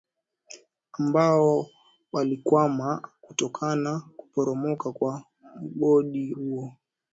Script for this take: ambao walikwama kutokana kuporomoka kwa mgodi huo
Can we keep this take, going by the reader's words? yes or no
yes